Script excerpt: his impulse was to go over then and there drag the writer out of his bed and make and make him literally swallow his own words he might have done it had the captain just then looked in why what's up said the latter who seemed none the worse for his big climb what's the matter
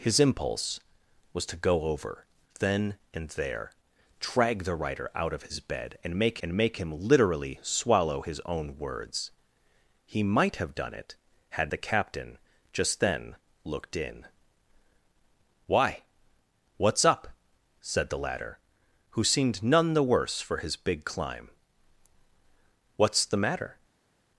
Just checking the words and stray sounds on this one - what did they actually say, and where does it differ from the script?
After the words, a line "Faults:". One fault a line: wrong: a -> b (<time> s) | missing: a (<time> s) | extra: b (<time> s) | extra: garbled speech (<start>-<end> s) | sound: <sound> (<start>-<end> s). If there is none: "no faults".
his impulse was to go over then and there drag the writer out of his bed and make and make him literally swallow his own words he might have done it had the captain just then looked in why what's up said the latter who seemed none the worse for his big climb what's the matter
Faults:
no faults